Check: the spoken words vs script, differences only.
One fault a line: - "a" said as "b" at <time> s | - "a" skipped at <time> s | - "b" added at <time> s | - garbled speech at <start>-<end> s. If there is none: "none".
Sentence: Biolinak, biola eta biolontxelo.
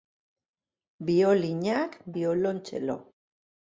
- "biola eta" skipped at 2.0 s